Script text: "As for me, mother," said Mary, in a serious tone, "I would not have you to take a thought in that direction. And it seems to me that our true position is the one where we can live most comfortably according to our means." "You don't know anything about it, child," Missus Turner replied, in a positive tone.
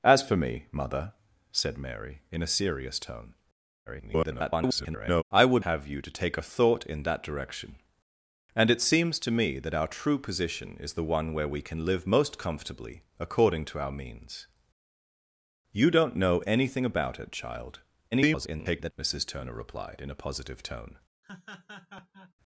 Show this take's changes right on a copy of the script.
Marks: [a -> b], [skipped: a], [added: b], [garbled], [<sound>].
"As for me, mother," said Mary, in a serious tone, [garbled] "I would [skipped: not] have you to take a thought in that direction. And it seems to me that our true position is the one where we can live most comfortably according to our means." "You don't know anything about it, child," [garbled] Missus Turner replied, in a positive tone. [laugh]